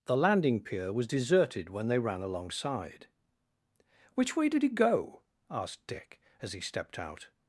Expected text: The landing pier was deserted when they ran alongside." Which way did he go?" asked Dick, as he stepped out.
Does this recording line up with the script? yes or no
yes